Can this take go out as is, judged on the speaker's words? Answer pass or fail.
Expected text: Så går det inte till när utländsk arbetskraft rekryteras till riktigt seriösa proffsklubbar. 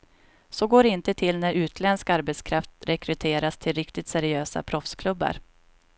pass